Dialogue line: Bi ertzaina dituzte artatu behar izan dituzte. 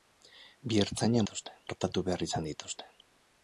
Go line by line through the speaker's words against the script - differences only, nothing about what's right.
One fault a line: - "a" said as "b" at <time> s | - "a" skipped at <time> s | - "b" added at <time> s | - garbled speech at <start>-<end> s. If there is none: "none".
none